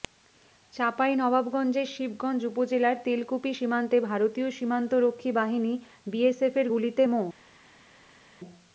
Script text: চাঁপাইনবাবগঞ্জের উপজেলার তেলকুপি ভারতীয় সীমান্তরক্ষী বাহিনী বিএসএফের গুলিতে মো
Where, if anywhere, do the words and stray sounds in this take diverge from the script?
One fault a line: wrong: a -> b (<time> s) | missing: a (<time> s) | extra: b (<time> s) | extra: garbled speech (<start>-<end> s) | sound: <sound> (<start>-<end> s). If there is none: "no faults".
extra: শিবগঞ্জ (1.9 s)
extra: সীমান্তে (3.5 s)